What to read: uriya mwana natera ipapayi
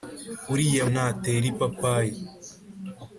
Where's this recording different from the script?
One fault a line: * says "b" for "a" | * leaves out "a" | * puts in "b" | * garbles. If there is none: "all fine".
* leaves out "mwana"